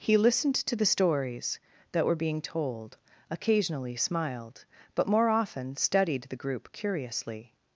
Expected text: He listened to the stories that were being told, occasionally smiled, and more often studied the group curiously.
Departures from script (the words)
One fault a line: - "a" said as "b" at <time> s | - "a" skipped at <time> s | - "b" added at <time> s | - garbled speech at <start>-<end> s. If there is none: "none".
- "and" said as "but" at 5.0 s